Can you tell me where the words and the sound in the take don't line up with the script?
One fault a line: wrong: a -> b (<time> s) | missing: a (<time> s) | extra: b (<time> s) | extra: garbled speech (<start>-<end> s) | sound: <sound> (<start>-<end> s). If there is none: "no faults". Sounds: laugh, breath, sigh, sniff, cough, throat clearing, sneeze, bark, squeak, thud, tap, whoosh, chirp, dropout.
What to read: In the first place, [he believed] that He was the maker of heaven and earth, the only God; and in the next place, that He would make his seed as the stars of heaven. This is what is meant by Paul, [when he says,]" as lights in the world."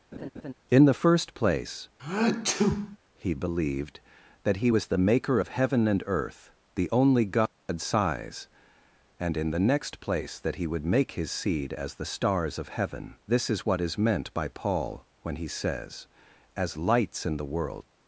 sound: laugh (0.1-0.5 s)
sound: sneeze (2.0-3.0 s)
extra: size (7.8 s)